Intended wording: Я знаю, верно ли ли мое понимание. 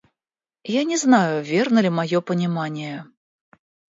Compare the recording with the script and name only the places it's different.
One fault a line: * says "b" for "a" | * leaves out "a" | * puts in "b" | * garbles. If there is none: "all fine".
* puts in "не"
* leaves out "ли"